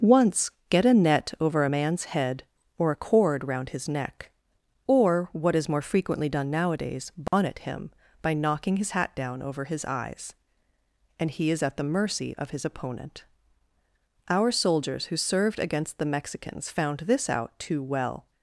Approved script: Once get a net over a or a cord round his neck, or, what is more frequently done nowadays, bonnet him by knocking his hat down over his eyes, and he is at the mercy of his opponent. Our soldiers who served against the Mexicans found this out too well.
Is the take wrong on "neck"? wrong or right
right